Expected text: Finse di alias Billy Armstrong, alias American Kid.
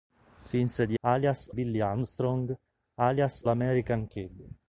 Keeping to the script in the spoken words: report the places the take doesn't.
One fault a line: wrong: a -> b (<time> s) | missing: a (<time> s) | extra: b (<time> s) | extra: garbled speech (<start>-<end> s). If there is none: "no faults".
no faults